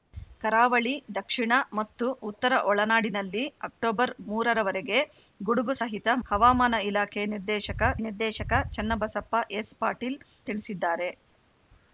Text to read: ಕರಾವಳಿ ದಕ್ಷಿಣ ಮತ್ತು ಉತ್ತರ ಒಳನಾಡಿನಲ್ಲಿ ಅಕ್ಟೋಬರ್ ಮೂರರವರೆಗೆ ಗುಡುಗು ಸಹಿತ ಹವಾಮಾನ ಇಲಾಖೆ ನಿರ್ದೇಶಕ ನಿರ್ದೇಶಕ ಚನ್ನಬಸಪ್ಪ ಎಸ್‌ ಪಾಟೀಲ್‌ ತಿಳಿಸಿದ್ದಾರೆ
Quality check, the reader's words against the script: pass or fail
pass